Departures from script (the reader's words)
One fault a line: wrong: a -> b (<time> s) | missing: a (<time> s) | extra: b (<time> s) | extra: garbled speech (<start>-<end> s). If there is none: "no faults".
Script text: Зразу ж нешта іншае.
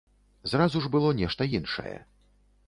extra: было (0.9 s)